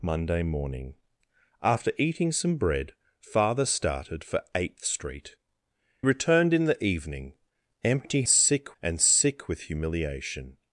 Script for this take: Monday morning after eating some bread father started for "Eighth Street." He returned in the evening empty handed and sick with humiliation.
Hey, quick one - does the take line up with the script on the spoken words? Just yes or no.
no